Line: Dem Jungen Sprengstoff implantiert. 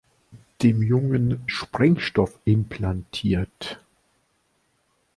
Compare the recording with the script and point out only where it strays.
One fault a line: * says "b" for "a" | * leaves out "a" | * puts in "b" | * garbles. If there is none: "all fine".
all fine